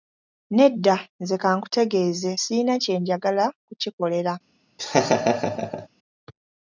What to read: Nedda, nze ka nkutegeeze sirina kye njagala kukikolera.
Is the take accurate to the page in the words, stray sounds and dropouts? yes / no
no